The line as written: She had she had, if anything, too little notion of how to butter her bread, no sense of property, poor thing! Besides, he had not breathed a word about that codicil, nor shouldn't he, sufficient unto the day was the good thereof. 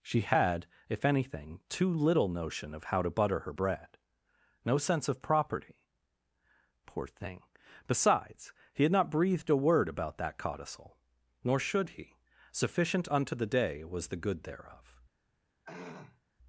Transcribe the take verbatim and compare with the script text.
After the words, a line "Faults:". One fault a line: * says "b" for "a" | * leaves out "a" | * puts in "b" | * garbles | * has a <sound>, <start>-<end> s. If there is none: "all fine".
She had, if anything, too little notion of how to butter her bread, no sense of property, poor thing! Besides, he had not breathed a word about that codicil, nor should he, sufficient unto the day was the good thereof.
Faults:
* leaves out "she had"
* says "should" for "shouldn't"
* has a throat clearing, 15.6-16.2 s